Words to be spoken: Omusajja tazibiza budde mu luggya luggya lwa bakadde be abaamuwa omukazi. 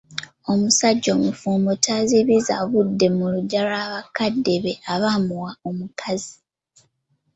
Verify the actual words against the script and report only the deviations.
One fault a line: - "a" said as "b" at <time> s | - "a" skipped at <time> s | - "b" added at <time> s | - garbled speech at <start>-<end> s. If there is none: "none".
- "omufumbo" added at 1.2 s
- "luggya" skipped at 3.6 s